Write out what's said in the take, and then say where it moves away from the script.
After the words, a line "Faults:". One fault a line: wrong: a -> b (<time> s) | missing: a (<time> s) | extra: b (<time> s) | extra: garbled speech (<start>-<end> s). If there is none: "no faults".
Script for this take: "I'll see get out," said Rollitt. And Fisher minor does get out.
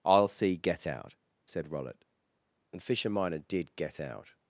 "I'll see get out," said Rollitt. And Fisher minor did get out.
Faults:
wrong: does -> did (3.4 s)